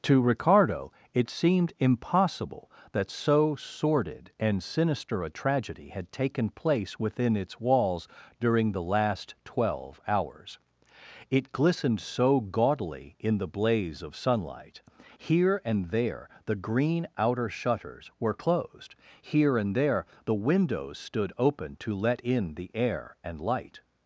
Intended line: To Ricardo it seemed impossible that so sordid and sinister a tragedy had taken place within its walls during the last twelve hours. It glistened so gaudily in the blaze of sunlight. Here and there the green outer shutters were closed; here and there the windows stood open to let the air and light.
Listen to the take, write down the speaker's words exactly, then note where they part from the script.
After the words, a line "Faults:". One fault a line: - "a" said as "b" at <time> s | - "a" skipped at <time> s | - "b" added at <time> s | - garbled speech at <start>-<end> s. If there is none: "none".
To Ricardo it seemed impossible that so sordid and sinister a tragedy had taken place within its walls during the last twelve hours. It glistened so gaudily in the blaze of sunlight. Here and there the green outer shutters were closed; here and there the windows stood open to let in the air and light.
Faults:
- "in" added at 22.2 s